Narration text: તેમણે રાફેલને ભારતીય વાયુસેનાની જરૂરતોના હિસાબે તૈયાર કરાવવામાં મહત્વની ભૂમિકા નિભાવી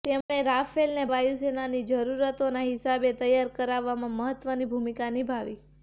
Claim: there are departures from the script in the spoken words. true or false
true